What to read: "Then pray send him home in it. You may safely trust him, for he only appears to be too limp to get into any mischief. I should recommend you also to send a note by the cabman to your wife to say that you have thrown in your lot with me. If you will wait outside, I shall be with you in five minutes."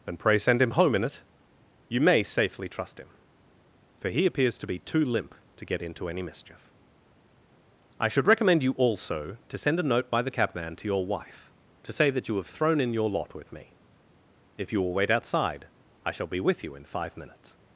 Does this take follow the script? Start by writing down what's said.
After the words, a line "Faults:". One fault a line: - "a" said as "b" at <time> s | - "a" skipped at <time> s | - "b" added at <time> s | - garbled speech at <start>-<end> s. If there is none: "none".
"Then pray send him home in it. You may safely trust him, for he appears to be too limp to get into any mischief. I should recommend you also to send a note by the cabman to your wife to say that you have thrown in your lot with me. If you will wait outside, I shall be with you in five minutes."
Faults:
- "only" skipped at 4.2 s